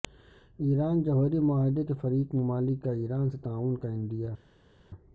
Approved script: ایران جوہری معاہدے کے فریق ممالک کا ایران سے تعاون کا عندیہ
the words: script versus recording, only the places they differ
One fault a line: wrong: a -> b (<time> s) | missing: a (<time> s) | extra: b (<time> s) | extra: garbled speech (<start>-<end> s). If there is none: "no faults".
no faults